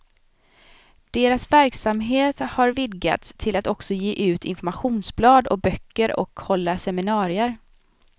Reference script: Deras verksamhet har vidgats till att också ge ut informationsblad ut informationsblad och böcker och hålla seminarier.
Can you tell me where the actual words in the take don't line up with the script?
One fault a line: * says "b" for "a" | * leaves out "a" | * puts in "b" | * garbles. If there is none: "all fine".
* leaves out "ut informationsblad"